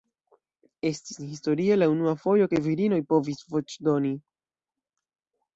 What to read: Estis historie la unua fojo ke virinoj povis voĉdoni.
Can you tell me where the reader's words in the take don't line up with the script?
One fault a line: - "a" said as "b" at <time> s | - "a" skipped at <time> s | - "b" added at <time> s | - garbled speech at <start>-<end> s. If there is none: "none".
none